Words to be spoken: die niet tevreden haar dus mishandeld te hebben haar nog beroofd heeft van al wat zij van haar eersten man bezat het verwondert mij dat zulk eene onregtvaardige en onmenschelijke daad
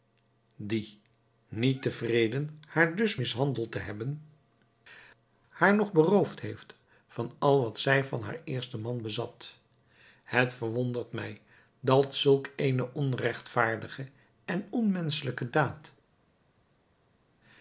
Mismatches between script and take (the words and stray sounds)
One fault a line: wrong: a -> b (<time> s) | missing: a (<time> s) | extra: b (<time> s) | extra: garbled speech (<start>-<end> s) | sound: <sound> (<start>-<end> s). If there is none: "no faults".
no faults